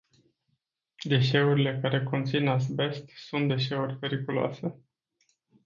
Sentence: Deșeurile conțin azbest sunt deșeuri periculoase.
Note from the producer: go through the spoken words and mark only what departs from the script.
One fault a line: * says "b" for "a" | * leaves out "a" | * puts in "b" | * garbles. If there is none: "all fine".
* puts in "care"